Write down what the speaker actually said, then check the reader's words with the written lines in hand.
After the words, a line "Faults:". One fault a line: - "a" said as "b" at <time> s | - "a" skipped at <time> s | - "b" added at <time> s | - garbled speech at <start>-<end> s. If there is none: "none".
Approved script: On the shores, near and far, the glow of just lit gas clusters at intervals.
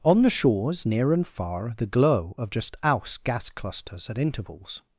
On the shores, near and far, the glow of just aus gas clusters at intervals.
Faults:
- "lit" said as "aus" at 2.8 s